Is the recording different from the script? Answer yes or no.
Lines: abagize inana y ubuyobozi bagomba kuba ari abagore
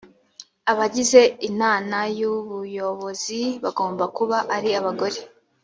no